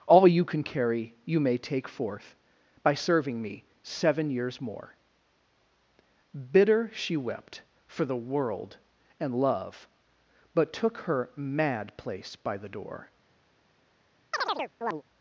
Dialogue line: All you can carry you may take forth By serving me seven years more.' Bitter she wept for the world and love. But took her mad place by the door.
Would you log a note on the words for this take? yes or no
no